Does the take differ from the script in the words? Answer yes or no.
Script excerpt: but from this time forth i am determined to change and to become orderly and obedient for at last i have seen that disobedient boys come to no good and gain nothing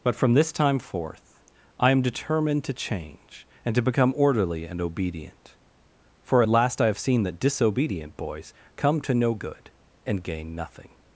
no